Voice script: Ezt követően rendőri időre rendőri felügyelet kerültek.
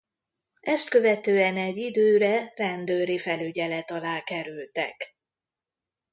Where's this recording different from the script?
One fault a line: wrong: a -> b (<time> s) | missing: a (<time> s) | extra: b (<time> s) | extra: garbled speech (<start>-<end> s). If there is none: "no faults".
wrong: rendőri -> egy (1.6 s)
extra: alá (3.9 s)